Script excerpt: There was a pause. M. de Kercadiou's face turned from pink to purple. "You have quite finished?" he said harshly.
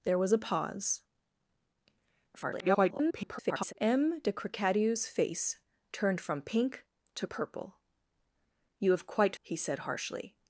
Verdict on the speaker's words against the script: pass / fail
fail